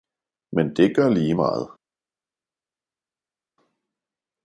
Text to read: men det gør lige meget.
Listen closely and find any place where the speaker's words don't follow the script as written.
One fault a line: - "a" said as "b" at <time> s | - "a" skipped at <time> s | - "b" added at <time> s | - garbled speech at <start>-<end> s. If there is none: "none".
none